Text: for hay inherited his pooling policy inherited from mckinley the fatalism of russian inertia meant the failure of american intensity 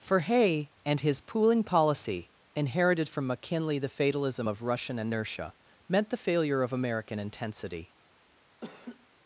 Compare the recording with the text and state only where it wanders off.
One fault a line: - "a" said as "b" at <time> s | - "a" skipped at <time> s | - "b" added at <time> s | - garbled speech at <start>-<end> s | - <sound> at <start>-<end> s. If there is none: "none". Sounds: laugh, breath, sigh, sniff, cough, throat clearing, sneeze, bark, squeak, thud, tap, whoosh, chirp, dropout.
- "inherited" said as "and" at 0.8 s
- laugh at 8.6-9.1 s